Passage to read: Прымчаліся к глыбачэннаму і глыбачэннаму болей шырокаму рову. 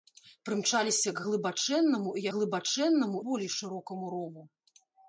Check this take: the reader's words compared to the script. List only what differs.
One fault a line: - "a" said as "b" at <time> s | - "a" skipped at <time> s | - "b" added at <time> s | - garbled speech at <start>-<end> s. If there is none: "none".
none